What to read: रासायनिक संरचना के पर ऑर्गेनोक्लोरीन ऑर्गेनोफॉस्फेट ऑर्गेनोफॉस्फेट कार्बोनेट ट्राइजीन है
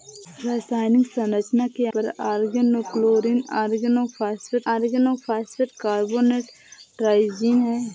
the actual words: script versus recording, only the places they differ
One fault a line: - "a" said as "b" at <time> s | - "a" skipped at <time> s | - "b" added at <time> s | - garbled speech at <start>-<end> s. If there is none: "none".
none